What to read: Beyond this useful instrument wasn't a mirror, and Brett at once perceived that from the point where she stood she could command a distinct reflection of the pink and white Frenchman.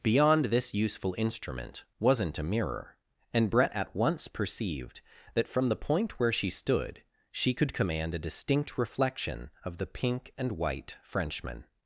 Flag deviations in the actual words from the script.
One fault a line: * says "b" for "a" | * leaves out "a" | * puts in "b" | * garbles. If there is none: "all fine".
all fine